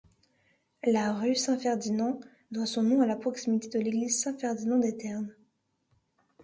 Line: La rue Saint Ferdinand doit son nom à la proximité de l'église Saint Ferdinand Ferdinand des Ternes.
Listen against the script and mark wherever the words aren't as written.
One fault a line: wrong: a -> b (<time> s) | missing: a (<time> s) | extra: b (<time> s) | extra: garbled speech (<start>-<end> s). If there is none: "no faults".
missing: Ferdinand (4.8 s)